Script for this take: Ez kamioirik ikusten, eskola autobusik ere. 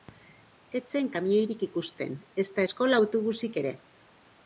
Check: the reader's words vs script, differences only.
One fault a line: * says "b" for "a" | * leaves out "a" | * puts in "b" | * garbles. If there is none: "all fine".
* puts in "zen"
* puts in "ezta"